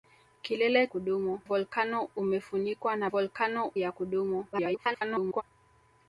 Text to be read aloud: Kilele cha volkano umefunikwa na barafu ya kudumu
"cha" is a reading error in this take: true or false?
true